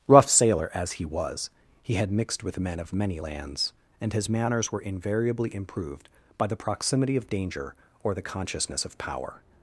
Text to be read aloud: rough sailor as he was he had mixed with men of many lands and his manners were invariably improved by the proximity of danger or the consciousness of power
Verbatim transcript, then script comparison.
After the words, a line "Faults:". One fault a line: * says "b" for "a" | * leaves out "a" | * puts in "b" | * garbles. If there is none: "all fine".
rough sailor as he was he had mixed with men of many lands and his manners were invariably improved by the proximity of danger or the consciousness of power
Faults:
all fine